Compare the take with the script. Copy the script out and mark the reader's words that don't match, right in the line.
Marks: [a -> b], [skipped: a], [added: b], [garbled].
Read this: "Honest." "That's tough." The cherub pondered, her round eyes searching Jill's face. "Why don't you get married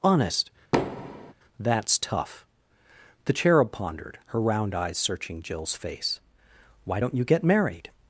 "Honest." "That's tough." The cherub pondered, her round eyes searching Jill's face. "Why don't you get married